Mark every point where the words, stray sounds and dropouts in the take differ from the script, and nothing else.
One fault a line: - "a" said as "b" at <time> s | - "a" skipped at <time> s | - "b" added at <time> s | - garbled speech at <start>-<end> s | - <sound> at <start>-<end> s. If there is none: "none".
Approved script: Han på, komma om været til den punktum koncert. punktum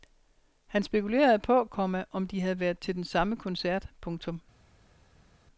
- "spekulerede" added at 0.8 s
- "de havde" added at 2.3 s
- "punktum" said as "samme" at 3.0 s